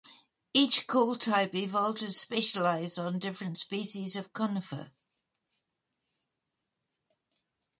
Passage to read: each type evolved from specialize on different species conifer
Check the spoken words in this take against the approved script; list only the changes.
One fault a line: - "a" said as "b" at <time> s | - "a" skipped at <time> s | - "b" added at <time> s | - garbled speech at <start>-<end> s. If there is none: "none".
- "call" added at 0.9 s
- "from" said as "to" at 2.0 s
- "of" added at 4.1 s